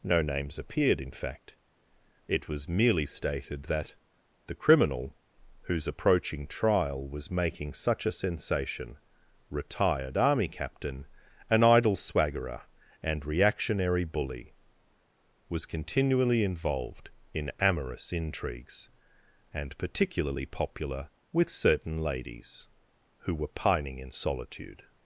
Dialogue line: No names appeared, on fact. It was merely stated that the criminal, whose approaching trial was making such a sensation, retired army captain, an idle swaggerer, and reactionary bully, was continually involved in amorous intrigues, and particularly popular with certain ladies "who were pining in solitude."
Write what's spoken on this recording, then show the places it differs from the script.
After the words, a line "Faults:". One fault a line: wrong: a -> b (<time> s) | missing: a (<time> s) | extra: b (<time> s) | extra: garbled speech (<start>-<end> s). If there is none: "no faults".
No names appeared, in fact. It was merely stated that the criminal, whose approaching trial was making such a sensation, retired army captain, an idle swaggerer, and reactionary bully, was continually involved in amorous intrigues, and particularly popular with certain ladies "who were pining in solitude."
Faults:
wrong: on -> in (1.0 s)